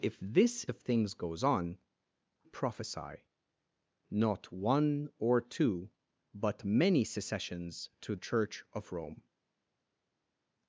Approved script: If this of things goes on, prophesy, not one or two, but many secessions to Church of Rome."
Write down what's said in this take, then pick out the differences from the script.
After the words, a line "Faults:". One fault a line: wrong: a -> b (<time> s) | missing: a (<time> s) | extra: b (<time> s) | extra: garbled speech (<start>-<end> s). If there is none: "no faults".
If this of things goes on, prophesy, not one or two, but many secessions to Church of Rome."
Faults:
no faults